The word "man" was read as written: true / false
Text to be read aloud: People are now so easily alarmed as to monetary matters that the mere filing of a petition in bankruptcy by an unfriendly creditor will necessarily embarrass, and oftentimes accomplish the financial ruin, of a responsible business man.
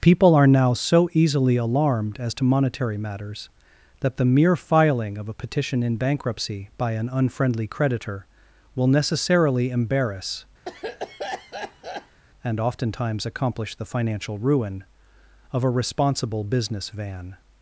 false